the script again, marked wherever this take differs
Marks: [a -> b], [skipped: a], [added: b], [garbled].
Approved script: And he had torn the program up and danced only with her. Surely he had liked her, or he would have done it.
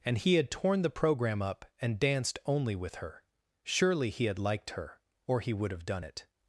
And he had torn the program up and danced only with her. Surely he had liked her, or he would have done it.